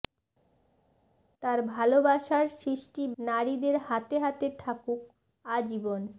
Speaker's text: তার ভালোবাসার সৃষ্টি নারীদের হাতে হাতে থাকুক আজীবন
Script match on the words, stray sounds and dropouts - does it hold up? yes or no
yes